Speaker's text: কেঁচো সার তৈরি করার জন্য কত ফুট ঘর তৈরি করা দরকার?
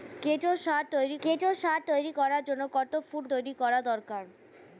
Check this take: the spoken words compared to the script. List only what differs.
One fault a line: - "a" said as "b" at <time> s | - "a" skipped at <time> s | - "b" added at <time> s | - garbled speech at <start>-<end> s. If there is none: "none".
- "কেঁচো সার তৈরি" added at 1.2 s
- "ঘর" skipped at 3.2 s